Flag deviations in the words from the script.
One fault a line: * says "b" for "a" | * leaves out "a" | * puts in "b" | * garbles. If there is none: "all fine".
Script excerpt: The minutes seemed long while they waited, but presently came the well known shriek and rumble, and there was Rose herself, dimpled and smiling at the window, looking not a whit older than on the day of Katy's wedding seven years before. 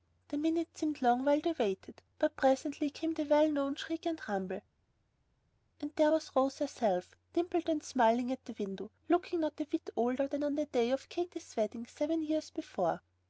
all fine